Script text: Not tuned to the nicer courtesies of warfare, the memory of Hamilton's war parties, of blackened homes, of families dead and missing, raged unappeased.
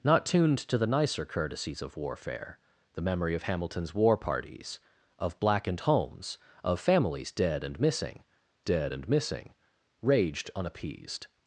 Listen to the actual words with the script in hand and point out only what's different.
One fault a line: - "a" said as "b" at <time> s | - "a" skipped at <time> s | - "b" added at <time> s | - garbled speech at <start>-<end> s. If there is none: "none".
- "dead and missing" added at 8.6 s